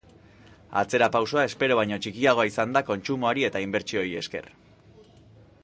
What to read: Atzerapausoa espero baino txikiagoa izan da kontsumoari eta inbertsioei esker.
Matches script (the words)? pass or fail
pass